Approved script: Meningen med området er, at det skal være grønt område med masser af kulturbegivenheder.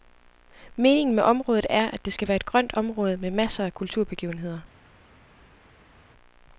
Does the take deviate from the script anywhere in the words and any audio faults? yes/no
yes